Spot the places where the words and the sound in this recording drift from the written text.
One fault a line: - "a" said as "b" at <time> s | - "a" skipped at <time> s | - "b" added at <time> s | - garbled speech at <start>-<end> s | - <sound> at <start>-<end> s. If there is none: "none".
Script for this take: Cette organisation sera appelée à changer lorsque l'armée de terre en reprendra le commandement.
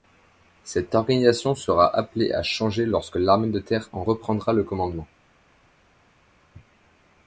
none